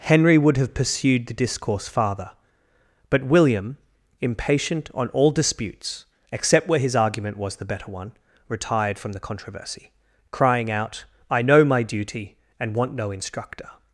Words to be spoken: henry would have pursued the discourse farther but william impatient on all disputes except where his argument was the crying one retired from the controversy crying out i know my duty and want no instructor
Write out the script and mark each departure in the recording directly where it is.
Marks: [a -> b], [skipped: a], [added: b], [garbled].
henry would have pursued the discourse farther but william impatient on all disputes except where his argument was the [crying -> better] one retired from the controversy crying out i know my duty and want no instructor